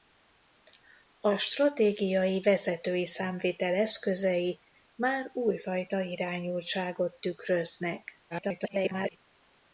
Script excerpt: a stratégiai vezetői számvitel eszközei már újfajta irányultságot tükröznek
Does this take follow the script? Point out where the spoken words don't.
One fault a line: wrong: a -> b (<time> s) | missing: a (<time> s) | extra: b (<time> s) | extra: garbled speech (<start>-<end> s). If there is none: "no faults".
extra: garbled speech (8.3-9.2 s)